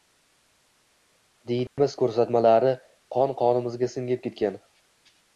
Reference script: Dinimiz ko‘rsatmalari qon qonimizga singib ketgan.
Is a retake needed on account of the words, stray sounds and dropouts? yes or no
yes